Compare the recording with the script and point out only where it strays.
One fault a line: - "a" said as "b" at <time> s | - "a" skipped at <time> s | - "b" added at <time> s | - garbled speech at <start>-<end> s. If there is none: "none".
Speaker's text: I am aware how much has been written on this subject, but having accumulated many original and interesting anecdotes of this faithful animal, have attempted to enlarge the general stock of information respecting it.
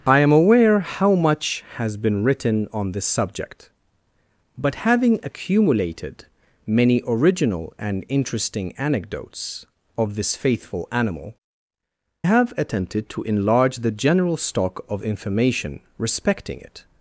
none